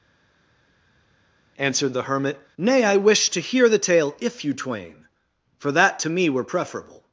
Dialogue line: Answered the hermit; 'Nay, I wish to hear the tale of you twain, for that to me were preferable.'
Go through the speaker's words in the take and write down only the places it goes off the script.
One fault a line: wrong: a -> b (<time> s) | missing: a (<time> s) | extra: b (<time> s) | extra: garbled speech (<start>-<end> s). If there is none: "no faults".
wrong: of -> if (4.2 s)